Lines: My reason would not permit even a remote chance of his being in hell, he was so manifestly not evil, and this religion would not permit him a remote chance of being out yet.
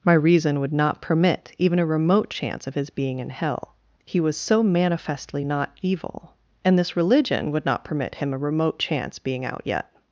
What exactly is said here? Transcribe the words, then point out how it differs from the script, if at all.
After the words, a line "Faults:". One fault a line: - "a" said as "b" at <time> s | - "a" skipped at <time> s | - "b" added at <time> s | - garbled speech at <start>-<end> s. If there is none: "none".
My reason would not permit even a remote chance of his being in hell, he was so manifestly not evil, and this religion would not permit him a remote chance being out yet.
Faults:
- "of" skipped at 9.2 s